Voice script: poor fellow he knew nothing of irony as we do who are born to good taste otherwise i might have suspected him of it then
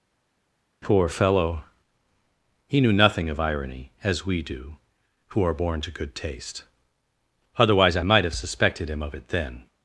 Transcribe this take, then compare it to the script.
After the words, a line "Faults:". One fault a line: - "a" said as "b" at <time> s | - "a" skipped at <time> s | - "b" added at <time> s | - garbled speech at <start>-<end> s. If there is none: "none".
poor fellow he knew nothing of irony as we do who are born to good taste otherwise i might have suspected him of it then
Faults:
none